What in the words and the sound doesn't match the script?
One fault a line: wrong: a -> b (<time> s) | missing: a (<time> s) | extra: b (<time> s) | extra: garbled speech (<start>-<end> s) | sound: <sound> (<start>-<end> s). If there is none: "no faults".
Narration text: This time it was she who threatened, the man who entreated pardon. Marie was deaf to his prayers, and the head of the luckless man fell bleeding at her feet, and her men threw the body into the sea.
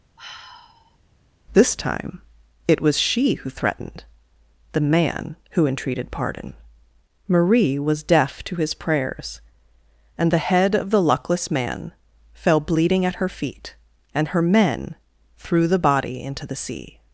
sound: sigh (0.2-1.0 s)